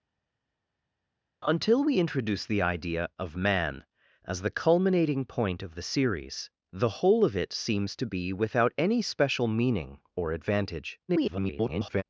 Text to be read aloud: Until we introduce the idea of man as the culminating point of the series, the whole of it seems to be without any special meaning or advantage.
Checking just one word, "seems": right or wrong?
right